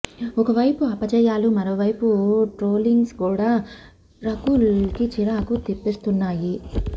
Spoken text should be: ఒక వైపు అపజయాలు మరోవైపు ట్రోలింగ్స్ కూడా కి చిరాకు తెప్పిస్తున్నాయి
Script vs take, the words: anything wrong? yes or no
yes